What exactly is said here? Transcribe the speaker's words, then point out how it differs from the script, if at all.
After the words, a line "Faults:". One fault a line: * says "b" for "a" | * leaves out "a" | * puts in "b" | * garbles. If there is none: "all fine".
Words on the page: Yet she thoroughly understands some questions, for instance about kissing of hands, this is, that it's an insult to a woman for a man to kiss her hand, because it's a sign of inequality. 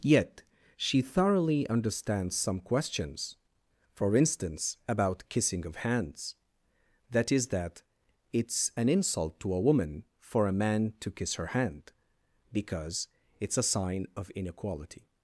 Yet she thoroughly understands some questions, for instance about kissing of hands, that is, that it's an insult to a woman for a man to kiss her hand, because it's a sign of inequality.
Faults:
* says "that" for "this"